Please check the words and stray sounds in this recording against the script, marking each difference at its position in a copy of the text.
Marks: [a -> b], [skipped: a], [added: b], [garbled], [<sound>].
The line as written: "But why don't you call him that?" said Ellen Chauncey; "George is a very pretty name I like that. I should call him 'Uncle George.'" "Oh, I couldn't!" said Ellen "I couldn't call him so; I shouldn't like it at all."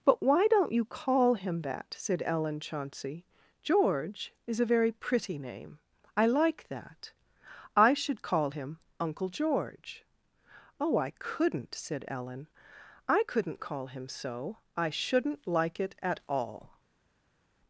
"But why don't you call him that?" said Ellen Chauncey; "George is a very pretty name I like that. I should call him 'Uncle George.'" "Oh, I couldn't!" said Ellen "I couldn't call him so; I shouldn't like it at all."